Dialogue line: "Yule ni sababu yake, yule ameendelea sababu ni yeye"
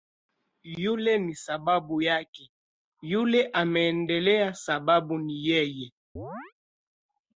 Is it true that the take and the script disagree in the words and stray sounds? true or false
true